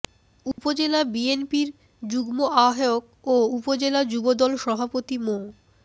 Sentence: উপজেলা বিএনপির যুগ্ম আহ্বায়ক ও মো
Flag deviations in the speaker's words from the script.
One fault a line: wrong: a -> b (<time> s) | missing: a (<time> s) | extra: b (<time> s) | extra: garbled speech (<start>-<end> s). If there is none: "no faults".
extra: উপজেলা যুবদল সভাপতি (3.6 s)